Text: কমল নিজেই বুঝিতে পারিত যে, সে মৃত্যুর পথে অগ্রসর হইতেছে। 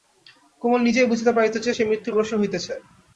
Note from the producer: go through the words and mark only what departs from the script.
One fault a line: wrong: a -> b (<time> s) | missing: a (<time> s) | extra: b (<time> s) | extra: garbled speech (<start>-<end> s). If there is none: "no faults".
missing: পথে (2.1 s)